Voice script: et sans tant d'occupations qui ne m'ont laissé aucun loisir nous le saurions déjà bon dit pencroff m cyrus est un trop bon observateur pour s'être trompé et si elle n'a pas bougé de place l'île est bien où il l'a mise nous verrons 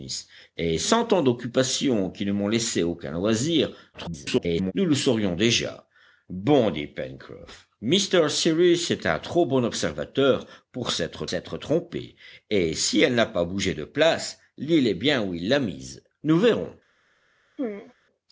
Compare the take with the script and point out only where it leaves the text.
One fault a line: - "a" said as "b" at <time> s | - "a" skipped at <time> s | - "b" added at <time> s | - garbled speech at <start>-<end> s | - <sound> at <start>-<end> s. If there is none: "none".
- garbled speech at 3.9-4.7 s
- "s'être" added at 11.3 s
- throat clearing at 17.6-17.9 s